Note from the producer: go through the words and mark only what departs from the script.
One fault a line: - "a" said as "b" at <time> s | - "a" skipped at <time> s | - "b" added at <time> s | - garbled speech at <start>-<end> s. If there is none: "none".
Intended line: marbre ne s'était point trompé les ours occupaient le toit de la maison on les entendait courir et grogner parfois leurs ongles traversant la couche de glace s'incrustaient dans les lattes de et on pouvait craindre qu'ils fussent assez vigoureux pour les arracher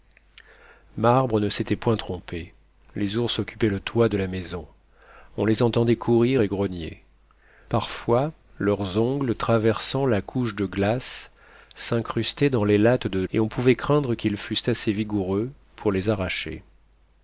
none